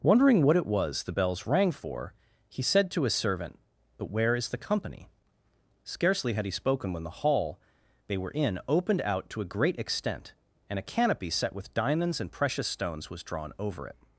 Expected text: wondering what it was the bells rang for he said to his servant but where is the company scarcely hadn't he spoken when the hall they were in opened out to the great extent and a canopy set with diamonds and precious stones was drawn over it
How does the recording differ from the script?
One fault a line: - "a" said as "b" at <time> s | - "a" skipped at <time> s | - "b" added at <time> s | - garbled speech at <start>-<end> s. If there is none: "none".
- "hadn't" said as "had" at 6.3 s
- "the" said as "a" at 9.4 s